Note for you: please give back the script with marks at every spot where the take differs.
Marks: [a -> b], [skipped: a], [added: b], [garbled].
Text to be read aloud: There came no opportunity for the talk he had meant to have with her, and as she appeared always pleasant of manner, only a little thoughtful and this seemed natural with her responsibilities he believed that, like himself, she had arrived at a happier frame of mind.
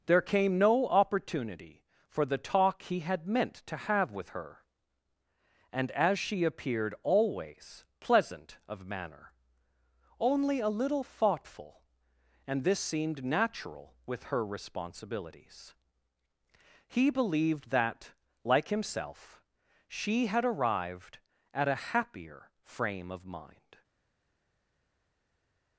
There came no opportunity for the talk he had meant to have with her, and as she appeared always pleasant of manner, only a little thoughtful and this seemed natural with her responsibilities he believed that, like himself, she had arrived at a happier frame of mind.